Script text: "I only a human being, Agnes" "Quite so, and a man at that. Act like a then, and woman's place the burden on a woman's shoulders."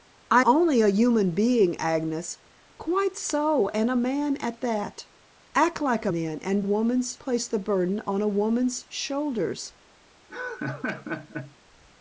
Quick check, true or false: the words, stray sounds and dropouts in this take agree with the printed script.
false